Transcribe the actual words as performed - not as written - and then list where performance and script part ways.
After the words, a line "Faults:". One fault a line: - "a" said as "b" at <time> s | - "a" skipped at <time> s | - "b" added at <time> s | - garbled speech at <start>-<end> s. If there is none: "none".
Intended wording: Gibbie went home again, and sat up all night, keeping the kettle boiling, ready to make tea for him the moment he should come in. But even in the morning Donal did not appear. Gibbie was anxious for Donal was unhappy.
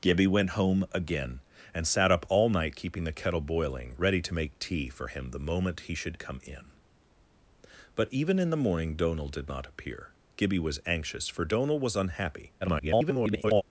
Gibbie went home again, and sat up all night, keeping the kettle boiling, ready to make tea for him the moment he should come in. But even in the morning Donal did not appear. Gibbie was anxious for Donal was unhappy. [garbled]
Faults:
- garbled speech at 12.6-13.6 s